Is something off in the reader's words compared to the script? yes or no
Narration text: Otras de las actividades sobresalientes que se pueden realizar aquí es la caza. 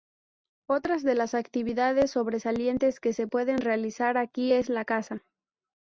no